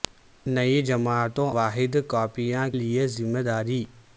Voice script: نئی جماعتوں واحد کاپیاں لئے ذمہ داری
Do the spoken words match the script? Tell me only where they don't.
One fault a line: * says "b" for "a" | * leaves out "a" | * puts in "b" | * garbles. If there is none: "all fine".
all fine